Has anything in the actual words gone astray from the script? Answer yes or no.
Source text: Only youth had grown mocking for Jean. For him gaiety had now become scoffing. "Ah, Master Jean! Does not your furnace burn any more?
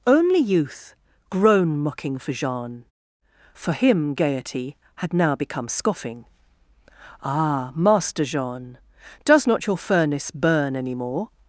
yes